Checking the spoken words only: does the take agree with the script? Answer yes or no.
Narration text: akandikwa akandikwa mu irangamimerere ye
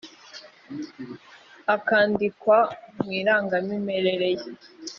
no